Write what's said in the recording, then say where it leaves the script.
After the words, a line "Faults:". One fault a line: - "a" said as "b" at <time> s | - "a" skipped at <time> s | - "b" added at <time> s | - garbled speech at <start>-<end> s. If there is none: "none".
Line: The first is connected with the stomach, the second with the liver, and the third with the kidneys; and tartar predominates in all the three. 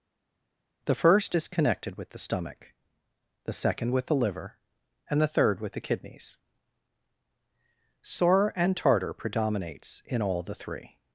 The first is connected with the stomach, the second with the liver, and the third with the kidneys; sore and tartar predominates in all the three.
Faults:
- "sore" added at 8.0 s